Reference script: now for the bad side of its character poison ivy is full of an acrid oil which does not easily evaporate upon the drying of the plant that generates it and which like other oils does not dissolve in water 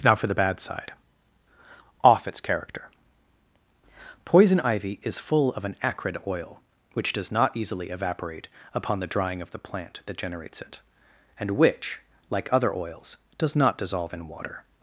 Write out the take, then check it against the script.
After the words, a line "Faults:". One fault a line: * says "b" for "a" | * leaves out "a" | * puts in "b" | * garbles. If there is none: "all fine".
now for the bad side off its character poison ivy is full of an acrid oil which does not easily evaporate upon the drying of the plant that generates it and which like other oils does not dissolve in water
Faults:
* says "off" for "of"